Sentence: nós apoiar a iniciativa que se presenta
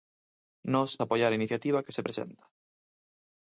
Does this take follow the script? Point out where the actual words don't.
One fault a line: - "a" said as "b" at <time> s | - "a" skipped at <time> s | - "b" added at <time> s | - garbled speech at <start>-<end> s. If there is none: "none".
none